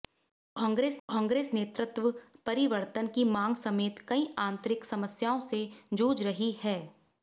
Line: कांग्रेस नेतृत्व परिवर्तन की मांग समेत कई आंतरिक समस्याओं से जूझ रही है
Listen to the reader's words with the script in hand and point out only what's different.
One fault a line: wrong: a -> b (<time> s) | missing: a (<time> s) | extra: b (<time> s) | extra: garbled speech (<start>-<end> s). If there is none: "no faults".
extra: कांग्रेस (1.1 s)